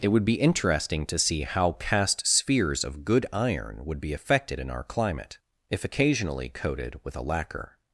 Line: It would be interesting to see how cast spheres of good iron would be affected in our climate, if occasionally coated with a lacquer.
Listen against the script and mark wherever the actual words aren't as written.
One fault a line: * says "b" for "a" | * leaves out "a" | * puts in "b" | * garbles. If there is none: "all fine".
all fine